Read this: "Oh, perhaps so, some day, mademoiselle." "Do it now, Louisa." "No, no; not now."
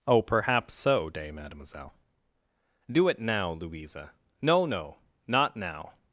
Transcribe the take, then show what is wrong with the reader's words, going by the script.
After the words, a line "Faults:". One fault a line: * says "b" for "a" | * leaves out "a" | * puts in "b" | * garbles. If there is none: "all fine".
"Oh, perhaps so, day, mademoiselle." "Do it now, Louisa." "No, no; not now."
Faults:
* leaves out "some"